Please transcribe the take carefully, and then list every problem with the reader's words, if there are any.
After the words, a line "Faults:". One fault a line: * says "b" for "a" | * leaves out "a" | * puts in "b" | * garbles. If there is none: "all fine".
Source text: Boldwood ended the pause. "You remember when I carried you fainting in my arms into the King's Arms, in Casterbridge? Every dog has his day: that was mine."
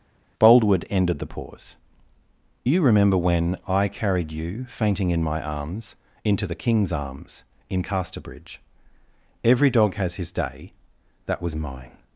Boldwood ended the pause. "You remember when I carried you fainting in my arms into the King's Arms, in Casterbridge? Every dog has his day: that was mine."
Faults:
all fine